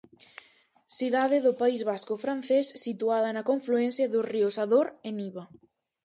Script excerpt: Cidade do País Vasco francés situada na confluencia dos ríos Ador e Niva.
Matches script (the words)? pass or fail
pass